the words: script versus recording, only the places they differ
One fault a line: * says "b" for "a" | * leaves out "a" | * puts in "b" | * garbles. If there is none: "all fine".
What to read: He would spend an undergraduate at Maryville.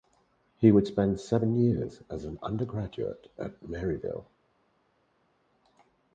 * puts in "seven years as"